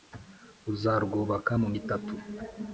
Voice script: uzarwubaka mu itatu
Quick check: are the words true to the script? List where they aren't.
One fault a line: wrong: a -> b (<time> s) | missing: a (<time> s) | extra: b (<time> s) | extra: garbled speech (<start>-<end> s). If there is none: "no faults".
no faults